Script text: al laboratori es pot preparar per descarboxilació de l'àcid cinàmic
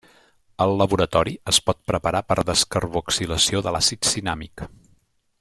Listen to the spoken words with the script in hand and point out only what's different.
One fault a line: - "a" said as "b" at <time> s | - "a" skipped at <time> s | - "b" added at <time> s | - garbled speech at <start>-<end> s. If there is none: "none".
none